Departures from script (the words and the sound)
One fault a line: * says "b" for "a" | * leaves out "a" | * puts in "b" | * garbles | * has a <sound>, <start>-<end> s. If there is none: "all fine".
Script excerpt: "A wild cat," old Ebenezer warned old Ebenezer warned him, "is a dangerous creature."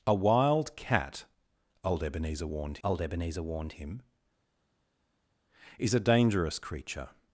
all fine